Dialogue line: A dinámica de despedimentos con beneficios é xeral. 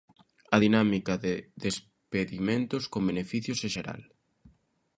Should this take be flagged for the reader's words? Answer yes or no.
no